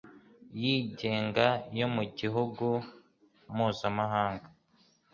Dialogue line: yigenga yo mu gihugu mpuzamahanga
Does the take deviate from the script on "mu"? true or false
false